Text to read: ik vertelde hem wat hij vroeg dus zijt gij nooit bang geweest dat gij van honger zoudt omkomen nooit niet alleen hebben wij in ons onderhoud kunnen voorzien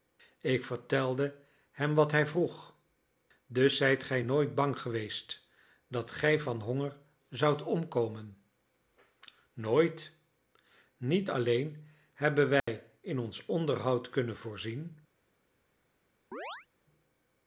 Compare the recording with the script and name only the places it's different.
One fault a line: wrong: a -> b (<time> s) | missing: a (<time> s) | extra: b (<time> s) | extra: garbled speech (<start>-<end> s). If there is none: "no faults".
no faults